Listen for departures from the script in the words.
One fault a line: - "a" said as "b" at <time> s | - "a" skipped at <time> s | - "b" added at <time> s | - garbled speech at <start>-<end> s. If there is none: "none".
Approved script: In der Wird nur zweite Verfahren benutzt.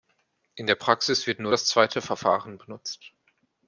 - "Praxis" added at 0.7 s
- "das" added at 1.5 s